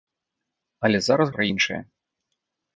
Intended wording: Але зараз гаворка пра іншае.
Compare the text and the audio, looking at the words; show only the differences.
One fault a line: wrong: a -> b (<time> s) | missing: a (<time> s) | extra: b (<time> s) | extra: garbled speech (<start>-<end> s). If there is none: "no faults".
missing: гаворка (1.3 s)